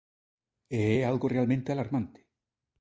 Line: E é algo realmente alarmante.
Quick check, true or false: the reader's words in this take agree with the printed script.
true